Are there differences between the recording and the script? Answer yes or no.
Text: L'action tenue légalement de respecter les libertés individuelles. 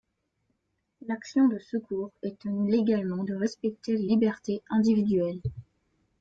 yes